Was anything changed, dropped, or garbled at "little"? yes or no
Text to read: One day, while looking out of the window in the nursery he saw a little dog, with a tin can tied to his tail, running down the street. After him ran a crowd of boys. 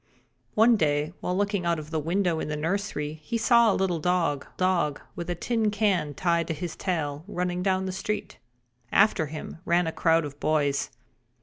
no